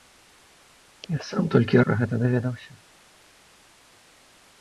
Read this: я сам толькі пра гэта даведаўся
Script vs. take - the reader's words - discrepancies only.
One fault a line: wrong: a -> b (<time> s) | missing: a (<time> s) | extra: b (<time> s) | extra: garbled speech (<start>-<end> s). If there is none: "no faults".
no faults